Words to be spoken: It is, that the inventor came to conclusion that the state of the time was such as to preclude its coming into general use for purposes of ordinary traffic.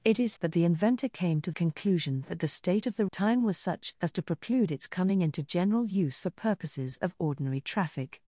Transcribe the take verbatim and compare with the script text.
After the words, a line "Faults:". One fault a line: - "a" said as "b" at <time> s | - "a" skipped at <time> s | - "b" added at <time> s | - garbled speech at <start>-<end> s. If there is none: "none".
It is, that the inventor came to conclusion that the state of the time was such as to preclude its coming into general use for purposes of ordinary traffic.
Faults:
none